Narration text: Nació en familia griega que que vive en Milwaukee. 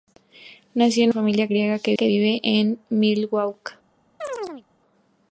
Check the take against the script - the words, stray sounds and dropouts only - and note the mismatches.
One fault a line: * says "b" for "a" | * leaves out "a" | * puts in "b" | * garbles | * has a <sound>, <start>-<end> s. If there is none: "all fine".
* has a chirp, 4.2-4.6 s